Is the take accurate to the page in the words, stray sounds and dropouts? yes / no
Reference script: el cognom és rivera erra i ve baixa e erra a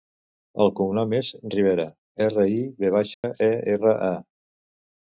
no